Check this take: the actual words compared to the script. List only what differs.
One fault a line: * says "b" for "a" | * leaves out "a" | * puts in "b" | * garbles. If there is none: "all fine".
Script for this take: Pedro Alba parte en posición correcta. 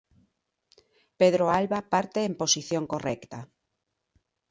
all fine